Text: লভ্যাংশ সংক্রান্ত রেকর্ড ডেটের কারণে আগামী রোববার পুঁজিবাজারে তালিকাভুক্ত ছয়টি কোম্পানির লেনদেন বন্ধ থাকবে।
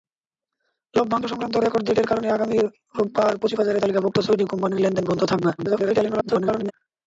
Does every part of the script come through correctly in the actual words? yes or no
no